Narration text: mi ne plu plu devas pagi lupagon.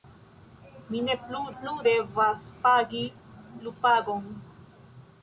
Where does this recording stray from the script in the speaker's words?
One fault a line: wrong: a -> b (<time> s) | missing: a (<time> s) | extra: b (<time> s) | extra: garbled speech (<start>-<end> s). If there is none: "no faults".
no faults